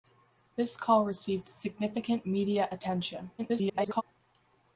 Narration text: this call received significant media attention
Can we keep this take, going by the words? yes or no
no